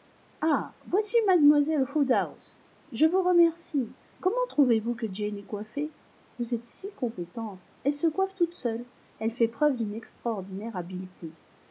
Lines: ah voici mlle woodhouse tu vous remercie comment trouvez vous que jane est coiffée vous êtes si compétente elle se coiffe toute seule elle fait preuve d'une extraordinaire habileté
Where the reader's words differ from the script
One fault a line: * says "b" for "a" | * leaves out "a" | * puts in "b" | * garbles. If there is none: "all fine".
* says "je" for "tu"